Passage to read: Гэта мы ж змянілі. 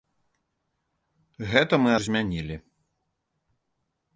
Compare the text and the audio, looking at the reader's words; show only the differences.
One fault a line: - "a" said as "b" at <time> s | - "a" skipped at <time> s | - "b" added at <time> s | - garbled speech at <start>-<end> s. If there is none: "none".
none